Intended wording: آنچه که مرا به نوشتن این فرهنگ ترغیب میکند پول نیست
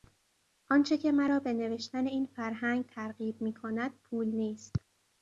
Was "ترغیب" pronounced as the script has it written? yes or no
yes